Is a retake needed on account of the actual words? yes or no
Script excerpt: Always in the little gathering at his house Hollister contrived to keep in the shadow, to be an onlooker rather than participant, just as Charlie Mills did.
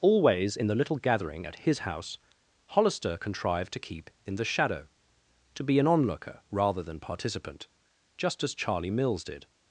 no